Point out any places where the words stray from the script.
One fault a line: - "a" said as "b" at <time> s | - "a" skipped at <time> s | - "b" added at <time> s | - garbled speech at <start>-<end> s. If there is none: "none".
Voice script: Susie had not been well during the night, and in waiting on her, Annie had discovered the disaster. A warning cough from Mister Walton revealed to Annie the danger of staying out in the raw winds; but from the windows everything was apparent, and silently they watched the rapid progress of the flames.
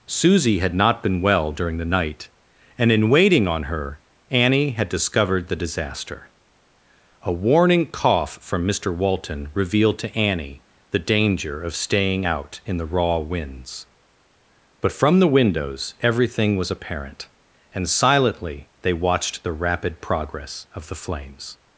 none